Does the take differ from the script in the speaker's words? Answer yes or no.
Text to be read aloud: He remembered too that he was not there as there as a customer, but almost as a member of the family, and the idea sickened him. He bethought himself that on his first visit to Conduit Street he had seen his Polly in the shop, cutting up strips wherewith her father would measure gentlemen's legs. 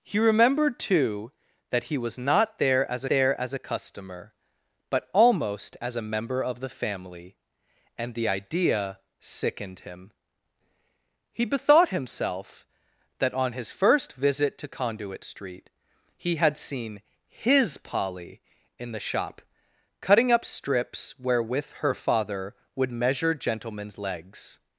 no